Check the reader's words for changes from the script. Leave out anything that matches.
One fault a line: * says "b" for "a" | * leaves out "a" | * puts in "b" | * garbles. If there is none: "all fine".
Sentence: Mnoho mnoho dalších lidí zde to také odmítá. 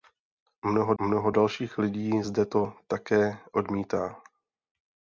all fine